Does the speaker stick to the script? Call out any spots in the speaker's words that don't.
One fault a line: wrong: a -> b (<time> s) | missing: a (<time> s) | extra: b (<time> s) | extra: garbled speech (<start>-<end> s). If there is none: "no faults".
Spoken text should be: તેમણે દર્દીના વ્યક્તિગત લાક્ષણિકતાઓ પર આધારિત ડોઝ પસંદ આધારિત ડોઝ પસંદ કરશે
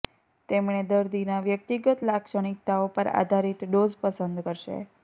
missing: આધારિત ડોઝ પસંદ (4.5 s)